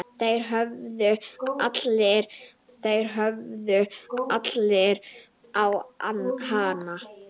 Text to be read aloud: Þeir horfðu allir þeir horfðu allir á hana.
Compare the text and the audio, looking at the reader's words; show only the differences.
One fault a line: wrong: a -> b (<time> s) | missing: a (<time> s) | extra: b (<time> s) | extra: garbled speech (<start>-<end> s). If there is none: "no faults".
no faults